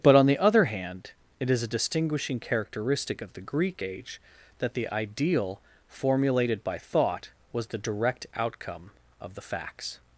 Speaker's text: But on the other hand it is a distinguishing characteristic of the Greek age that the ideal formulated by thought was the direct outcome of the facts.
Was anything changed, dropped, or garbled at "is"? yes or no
no